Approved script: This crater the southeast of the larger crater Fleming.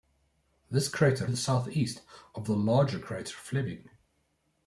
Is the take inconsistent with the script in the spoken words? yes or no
no